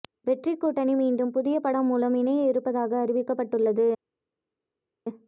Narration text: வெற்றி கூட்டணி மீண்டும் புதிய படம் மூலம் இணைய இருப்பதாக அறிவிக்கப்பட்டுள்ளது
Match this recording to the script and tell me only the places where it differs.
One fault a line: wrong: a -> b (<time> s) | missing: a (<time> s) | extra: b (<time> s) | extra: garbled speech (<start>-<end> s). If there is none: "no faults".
no faults